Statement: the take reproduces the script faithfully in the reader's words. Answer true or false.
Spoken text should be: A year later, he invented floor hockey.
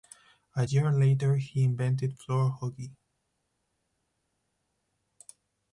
true